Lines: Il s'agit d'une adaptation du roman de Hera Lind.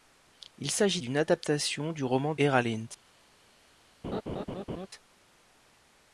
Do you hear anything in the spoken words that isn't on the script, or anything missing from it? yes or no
yes